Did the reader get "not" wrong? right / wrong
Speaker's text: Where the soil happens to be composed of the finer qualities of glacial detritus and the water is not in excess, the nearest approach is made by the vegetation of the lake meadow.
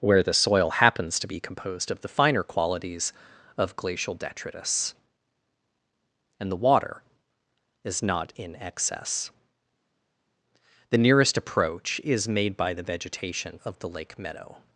right